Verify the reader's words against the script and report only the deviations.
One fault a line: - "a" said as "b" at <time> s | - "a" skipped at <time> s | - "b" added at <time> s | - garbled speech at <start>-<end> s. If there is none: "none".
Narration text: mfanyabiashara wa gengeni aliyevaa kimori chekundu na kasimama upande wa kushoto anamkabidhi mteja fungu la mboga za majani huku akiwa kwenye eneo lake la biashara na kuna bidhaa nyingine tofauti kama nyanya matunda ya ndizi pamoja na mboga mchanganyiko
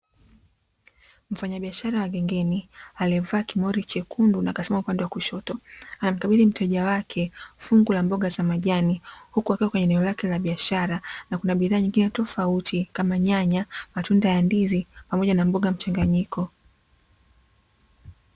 - "wake" added at 6.8 s